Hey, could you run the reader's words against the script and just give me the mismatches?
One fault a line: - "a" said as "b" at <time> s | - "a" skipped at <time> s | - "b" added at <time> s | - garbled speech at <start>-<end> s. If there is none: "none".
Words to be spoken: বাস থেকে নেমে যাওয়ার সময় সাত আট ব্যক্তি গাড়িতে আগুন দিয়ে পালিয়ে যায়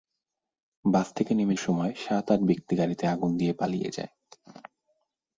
- "যাওয়ার" skipped at 1.6 s